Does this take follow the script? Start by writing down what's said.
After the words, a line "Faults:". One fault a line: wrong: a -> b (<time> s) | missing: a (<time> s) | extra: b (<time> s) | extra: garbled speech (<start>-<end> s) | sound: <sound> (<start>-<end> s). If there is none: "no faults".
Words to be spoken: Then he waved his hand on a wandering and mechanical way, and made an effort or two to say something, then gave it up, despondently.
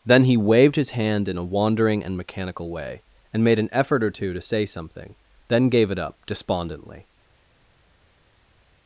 Then he waved his hand in a wandering and mechanical way, and made an effort or two to say something, then gave it up, despondently.
Faults:
wrong: on -> in (1.3 s)